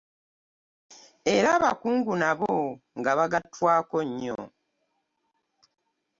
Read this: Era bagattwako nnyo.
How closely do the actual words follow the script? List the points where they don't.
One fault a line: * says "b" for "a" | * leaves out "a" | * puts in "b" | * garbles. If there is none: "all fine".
* puts in "abakungu nabo nga"